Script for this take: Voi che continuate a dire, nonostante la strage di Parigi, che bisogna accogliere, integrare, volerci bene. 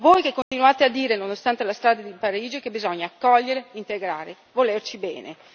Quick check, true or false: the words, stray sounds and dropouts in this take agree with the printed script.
false